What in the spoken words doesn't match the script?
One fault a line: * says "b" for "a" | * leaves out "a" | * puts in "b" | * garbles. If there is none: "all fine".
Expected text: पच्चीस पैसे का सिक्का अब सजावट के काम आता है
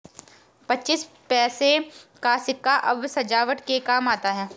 all fine